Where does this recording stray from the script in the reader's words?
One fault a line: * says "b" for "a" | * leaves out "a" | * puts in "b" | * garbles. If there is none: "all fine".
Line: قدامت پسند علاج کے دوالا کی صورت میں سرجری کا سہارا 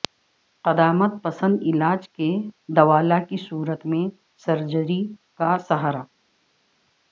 all fine